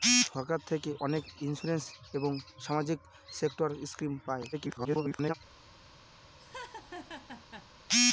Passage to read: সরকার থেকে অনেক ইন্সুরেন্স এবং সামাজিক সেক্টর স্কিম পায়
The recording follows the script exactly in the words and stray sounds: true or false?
false